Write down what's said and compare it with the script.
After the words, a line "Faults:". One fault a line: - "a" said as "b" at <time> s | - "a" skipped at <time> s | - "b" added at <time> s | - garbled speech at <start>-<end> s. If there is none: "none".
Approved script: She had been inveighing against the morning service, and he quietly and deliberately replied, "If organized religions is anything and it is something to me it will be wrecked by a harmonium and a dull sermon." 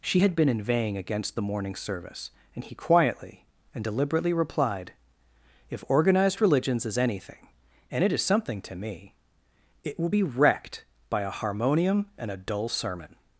She had been inveighing against the morning service, and he quietly and deliberately replied, "If organized religions is anything and it is something to me it will be wrecked by a harmonium and a dull sermon."
Faults:
none